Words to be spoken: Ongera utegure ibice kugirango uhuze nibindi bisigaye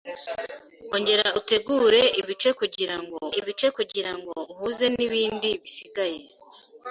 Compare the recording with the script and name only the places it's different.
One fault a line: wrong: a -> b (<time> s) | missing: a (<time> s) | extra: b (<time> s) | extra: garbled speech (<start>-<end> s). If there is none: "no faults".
extra: ibice kugirango (3.4 s)